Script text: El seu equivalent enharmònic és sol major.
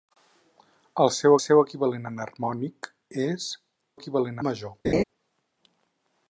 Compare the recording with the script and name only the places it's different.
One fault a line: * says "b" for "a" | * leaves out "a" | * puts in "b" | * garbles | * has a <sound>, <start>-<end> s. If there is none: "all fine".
* puts in "seu"
* says "equivalent" for "sol"
* has a laugh, 4.8-5.0 s